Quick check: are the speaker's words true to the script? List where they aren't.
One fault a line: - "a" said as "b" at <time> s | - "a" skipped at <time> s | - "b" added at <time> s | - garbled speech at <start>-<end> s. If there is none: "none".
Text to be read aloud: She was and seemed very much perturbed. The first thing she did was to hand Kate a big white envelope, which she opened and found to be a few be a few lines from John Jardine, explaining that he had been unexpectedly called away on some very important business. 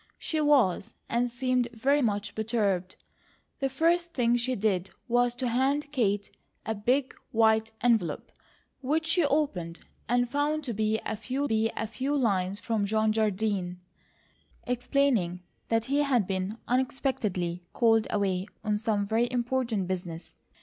none